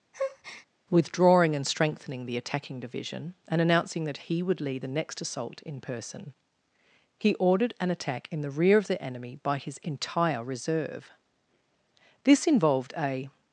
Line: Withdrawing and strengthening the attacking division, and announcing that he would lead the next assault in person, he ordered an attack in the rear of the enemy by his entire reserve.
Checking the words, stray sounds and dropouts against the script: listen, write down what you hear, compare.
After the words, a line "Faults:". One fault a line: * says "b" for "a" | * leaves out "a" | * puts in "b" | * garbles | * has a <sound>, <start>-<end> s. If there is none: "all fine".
Withdrawing and strengthening the attacking division, and announcing that he would lead the next assault in person, he ordered an attack in the rear of the enemy by his entire reserve. This involved a
Faults:
* has a breath, 0.1-0.7 s
* puts in "This involved a"